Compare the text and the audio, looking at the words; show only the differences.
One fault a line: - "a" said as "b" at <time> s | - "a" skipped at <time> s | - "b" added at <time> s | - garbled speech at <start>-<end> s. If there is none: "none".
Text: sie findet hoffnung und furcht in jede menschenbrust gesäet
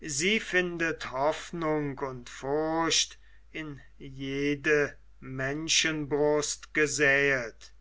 none